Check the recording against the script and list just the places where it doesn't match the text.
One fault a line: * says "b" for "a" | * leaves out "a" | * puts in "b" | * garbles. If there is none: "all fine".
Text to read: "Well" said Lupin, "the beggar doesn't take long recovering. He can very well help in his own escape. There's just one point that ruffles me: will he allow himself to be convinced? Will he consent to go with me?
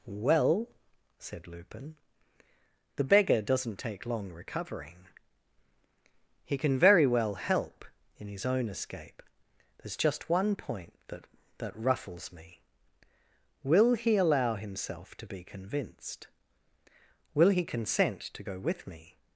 * puts in "that"